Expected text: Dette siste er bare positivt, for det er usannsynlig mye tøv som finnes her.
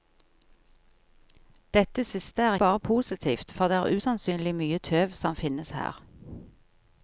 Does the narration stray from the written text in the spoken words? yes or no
no